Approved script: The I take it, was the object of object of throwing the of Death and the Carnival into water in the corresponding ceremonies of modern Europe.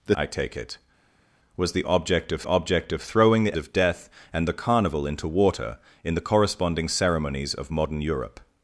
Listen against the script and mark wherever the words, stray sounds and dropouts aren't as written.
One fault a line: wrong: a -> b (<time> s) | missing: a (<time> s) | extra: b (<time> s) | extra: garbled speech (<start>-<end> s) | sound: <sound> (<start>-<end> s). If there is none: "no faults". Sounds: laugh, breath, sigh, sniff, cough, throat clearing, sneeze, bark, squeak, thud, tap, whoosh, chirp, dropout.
no faults